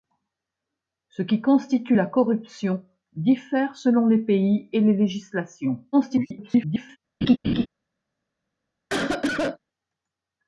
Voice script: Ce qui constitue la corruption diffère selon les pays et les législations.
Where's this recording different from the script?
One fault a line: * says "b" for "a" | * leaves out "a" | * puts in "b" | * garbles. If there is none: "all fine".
* garbles